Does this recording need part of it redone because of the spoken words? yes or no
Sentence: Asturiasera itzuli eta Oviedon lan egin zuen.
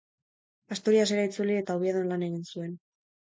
no